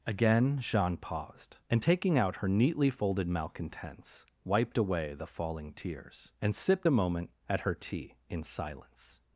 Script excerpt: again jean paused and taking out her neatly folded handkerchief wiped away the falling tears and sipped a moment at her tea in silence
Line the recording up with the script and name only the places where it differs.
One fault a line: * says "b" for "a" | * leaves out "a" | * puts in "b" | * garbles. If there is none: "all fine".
* says "malcontents" for "handkerchief"